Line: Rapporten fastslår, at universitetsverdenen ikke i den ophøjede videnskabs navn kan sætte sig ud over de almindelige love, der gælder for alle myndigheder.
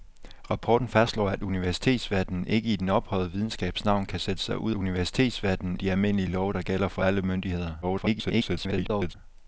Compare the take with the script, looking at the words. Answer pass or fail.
fail